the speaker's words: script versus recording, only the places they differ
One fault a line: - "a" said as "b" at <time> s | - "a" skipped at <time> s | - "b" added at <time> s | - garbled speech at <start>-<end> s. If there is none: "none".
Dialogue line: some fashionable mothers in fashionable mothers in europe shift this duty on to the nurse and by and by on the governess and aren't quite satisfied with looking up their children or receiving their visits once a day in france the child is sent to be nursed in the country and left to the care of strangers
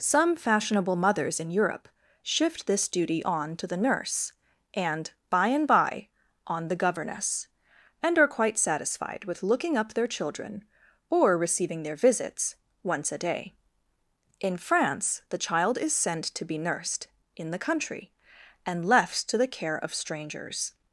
- "fashionable mothers in" skipped at 1.5 s
- "aren't" said as "are" at 8.2 s